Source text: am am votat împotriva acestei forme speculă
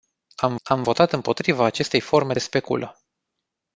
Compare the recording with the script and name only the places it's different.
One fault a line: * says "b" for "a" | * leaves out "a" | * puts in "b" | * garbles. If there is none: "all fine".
all fine